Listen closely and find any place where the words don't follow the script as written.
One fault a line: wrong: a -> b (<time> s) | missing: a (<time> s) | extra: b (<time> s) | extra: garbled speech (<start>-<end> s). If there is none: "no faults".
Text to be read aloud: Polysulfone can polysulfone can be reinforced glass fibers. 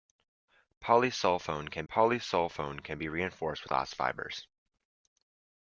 no faults